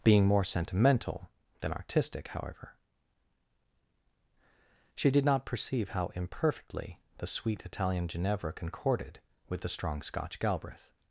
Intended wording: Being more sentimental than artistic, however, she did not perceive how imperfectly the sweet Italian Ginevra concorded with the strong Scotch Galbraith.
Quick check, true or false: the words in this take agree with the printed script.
true